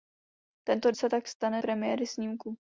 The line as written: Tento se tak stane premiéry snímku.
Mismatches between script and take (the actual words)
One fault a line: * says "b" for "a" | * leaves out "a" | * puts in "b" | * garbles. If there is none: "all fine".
all fine